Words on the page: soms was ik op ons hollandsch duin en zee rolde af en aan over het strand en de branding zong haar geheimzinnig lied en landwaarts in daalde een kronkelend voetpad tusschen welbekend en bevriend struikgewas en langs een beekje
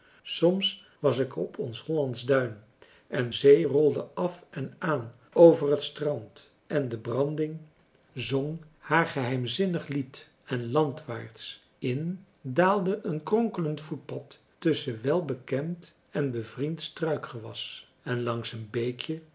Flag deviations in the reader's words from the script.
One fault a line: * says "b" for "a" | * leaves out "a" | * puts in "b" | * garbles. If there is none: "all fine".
all fine